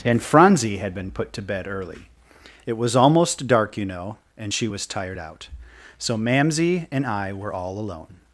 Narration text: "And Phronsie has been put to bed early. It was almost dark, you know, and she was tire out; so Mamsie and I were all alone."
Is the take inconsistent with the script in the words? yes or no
yes